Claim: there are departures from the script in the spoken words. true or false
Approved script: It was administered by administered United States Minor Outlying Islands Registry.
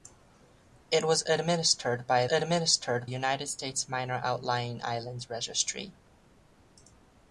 false